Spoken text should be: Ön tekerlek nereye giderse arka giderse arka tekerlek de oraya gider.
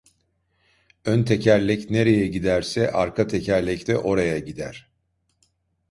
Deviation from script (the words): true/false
true